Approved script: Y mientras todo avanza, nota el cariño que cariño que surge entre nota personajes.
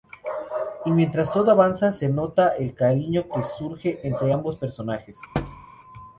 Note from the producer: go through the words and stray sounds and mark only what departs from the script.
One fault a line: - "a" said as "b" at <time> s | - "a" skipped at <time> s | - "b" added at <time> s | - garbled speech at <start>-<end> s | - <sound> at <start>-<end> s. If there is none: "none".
- "se" added at 1.9 s
- "cariño que" skipped at 3.4 s
- "nota" said as "ambos" at 4.3 s
- thud at 5.3-5.7 s